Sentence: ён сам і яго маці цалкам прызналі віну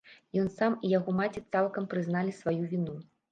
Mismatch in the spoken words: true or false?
true